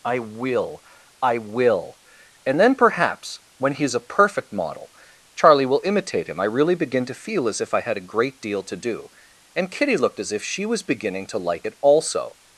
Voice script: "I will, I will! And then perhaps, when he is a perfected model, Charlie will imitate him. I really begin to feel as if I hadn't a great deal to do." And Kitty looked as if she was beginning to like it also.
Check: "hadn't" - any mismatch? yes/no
yes